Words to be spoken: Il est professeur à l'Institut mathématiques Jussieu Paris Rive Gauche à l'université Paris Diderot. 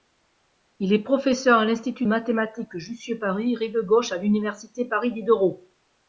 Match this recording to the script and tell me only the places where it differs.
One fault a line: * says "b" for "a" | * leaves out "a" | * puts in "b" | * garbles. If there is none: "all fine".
all fine